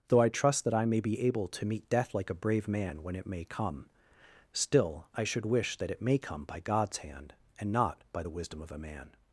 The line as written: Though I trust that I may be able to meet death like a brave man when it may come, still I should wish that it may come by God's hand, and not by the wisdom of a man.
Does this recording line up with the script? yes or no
yes